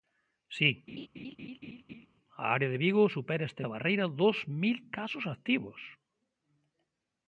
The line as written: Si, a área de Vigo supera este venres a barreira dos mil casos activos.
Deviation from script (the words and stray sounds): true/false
true